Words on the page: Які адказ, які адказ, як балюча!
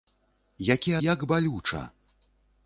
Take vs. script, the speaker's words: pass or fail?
fail